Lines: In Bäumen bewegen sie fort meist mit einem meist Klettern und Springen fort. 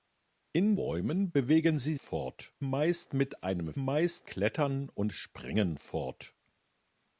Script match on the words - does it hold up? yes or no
yes